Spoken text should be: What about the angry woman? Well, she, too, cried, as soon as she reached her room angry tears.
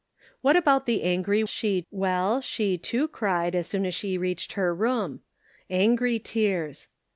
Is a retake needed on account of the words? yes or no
yes